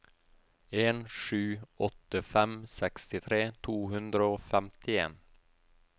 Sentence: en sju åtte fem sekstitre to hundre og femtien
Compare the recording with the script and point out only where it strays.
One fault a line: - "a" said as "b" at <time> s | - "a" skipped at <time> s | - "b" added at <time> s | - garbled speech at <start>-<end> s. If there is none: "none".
none